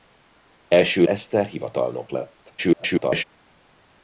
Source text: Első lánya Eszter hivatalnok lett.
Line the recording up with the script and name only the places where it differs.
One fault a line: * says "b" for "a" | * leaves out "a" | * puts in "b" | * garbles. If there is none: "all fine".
* leaves out "lánya"
* garbles